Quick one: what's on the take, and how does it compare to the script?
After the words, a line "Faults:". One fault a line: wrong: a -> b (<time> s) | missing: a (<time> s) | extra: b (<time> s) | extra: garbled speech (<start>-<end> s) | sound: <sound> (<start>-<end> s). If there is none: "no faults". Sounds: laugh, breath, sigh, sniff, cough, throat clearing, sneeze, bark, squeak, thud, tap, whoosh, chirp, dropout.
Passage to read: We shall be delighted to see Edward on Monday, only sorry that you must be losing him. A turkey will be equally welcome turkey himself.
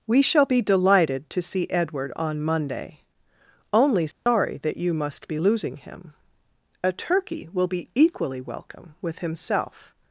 We shall be delighted to see Edward on Monday, only sorry that you must be losing him. A turkey will be equally welcome with himself.
Faults:
sound: dropout (4.1-4.3 s)
wrong: turkey -> with (9.0 s)